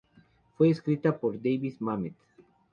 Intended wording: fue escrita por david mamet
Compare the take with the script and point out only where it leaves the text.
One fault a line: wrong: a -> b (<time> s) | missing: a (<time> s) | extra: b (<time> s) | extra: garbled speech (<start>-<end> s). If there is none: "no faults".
no faults